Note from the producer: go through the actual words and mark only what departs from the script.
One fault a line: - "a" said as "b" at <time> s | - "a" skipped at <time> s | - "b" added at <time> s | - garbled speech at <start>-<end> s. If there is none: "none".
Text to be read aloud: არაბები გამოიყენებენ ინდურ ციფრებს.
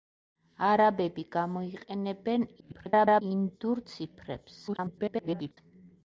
- garbled speech at 2.6-3.2 s
- garbled speech at 4.7-5.6 s